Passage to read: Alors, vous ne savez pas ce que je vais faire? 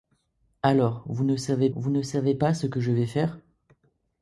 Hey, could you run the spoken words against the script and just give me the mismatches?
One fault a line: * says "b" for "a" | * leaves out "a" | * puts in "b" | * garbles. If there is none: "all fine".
* puts in "vous ne savez"